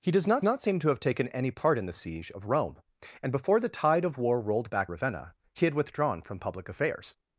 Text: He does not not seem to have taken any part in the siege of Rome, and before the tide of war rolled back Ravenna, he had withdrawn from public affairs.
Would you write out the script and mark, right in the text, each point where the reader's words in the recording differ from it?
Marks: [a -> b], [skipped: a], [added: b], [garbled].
He does not not seem to have taken any part in the siege of Rome, and before the tide of war rolled back Ravenna, he had withdrawn from public affairs.